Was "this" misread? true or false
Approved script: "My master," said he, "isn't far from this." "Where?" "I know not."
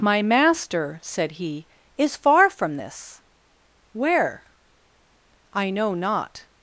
false